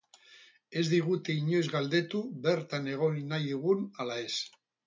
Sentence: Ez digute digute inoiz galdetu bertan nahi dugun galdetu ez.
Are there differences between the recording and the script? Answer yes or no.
yes